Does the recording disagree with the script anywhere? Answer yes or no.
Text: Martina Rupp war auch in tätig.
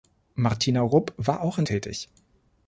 no